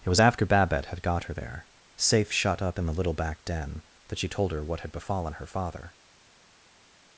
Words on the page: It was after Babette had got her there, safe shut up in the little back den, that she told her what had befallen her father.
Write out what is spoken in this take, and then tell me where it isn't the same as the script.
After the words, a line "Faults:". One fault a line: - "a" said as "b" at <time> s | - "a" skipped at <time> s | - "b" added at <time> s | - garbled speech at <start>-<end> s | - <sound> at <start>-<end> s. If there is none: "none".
It was after Babette had got her there, safe shut up in the little back den, that she told her what had befallen her father.
Faults:
none